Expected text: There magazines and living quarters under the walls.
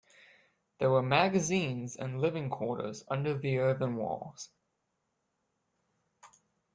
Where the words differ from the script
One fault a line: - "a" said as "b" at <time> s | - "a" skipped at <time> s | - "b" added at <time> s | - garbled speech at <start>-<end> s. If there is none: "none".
- "were" added at 0.9 s
- "earthen" added at 3.6 s